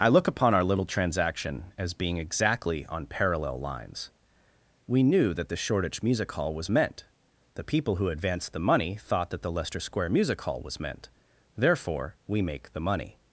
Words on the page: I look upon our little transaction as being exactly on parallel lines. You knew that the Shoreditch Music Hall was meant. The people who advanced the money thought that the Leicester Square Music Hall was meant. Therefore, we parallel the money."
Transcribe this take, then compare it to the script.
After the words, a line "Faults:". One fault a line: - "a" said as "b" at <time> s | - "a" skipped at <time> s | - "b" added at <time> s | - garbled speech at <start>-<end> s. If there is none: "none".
I look upon our little transaction as being exactly on parallel lines. We knew that the Shoreditch Music Hall was meant. The people who advanced the money thought that the Leicester Square Music Hall was meant. Therefore, we make the money."
Faults:
- "You" said as "We" at 4.9 s
- "parallel" said as "make" at 12.4 s